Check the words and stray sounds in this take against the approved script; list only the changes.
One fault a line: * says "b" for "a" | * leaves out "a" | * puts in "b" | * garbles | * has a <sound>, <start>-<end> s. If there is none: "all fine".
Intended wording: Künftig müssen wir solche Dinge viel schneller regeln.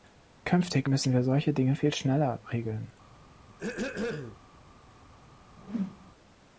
* has a throat clearing, 3.5-4.4 s
* has a whoosh, 5.6-6.1 s